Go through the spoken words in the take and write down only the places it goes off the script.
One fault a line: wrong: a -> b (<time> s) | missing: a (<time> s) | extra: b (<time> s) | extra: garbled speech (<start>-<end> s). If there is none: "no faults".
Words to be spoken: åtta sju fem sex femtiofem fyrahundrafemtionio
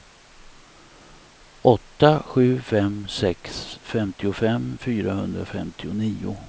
no faults